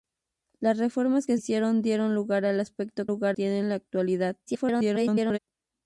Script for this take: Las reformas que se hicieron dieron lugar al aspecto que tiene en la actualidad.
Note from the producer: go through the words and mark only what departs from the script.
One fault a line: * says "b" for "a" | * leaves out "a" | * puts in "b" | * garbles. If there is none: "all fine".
* leaves out "se"
* says "lugar" for "que"
* garbles